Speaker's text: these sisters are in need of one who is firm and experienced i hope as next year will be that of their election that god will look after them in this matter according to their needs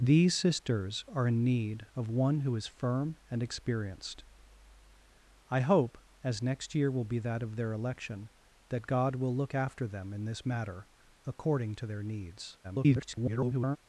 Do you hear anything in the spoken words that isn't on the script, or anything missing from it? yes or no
yes